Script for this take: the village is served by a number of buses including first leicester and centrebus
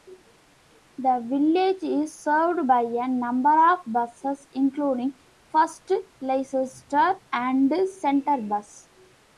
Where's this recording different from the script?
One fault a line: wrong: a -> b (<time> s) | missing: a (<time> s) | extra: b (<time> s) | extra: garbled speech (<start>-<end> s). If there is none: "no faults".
no faults